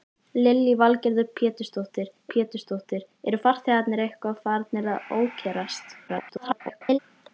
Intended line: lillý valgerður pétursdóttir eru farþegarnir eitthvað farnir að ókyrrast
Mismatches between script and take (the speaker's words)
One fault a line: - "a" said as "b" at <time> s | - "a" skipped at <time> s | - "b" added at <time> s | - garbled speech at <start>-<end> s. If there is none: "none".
- "pétursdóttir" added at 2.3 s
- garbled speech at 6.1-7.0 s